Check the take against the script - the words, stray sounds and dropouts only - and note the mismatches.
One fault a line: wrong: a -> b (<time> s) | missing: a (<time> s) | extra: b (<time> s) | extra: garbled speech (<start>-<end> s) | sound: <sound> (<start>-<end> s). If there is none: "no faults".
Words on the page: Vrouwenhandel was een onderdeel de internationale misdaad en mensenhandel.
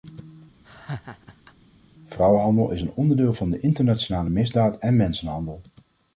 sound: laugh (0.6-1.5 s)
wrong: was -> is (2.7 s)
extra: van (3.3 s)